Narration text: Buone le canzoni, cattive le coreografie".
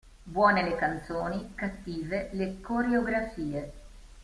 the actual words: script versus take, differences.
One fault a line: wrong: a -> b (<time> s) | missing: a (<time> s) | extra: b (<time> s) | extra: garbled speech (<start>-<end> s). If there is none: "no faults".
no faults